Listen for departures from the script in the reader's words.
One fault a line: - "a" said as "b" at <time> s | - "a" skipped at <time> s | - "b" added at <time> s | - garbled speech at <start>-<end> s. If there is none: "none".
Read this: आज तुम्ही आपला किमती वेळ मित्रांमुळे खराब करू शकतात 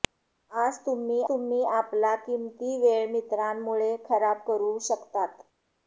- "तुम्ही" added at 1.3 s